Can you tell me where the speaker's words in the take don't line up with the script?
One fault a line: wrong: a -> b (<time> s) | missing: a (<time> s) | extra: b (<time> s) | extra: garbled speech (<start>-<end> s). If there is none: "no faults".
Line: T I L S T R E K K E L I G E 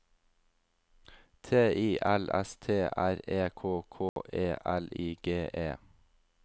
no faults